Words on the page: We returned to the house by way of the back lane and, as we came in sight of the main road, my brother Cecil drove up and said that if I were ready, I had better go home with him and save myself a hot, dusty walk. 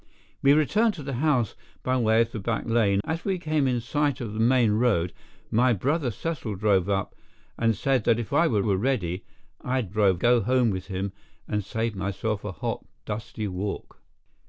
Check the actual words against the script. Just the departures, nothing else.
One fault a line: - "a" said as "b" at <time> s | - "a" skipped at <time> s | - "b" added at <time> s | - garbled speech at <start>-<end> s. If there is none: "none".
- "and" skipped at 3.0 s
- "were" added at 8.6 s
- "better" said as "drove" at 9.9 s